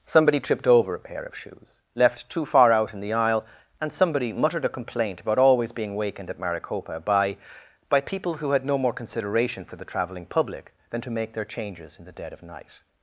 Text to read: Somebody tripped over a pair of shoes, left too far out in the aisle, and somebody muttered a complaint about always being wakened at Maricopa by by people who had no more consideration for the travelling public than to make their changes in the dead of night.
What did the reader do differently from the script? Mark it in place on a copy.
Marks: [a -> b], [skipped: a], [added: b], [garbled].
Somebody tripped over a pair of shoes, left too far out in the aisle, and somebody muttered a complaint about always being wakened at Maricopa by by people who had no more consideration for the travelling public than to make their changes in the dead of night.